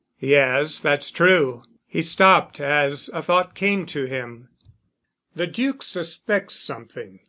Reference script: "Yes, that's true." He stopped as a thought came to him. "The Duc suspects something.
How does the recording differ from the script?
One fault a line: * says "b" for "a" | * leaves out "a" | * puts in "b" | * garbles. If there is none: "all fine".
all fine